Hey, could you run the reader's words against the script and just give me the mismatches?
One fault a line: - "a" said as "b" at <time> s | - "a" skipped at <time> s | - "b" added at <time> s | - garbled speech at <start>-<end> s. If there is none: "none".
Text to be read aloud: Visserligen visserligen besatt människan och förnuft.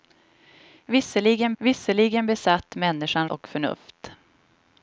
none